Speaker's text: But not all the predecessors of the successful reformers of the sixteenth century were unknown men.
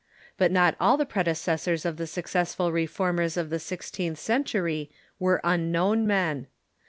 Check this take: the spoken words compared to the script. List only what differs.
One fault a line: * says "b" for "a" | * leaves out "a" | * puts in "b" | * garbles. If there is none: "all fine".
all fine